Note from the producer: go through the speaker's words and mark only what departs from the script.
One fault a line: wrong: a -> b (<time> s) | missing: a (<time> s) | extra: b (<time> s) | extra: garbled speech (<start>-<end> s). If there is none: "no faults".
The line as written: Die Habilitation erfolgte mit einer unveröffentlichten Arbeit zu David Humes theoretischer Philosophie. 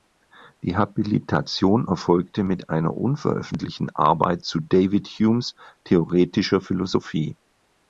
no faults